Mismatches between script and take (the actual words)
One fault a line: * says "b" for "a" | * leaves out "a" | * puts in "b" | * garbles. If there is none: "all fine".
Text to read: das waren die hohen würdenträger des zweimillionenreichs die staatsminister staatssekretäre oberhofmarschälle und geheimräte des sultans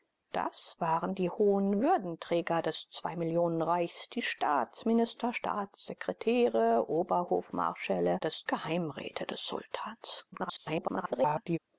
* says "des" for "und"
* garbles